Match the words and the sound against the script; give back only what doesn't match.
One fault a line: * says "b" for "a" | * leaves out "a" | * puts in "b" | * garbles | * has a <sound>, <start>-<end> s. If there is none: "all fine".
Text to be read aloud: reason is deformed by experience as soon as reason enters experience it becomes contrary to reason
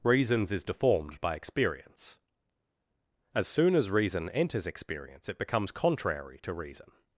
* says "reasons" for "reason"